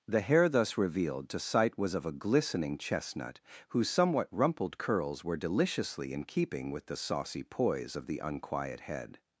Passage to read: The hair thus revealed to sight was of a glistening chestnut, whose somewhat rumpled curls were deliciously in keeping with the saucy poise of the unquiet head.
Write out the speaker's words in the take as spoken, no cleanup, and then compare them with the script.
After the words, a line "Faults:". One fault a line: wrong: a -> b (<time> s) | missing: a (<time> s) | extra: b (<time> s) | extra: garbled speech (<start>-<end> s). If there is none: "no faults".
The hair thus revealed to sight was of a glistening chestnut, whose somewhat rumpled curls were deliciously in keeping with the saucy poise of the unquiet head.
Faults:
no faults